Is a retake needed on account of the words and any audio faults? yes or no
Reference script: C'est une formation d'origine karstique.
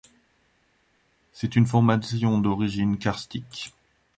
no